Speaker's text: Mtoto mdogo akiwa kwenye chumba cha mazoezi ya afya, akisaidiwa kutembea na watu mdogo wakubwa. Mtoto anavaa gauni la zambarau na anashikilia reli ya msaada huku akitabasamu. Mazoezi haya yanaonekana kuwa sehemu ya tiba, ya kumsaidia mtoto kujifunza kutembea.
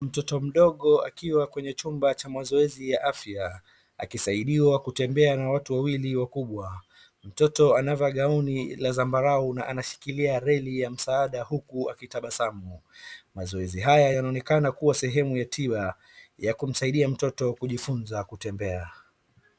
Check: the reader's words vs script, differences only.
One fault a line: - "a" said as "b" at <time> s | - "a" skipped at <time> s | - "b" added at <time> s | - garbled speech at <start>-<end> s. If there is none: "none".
- "mdogo" said as "wawili" at 5.7 s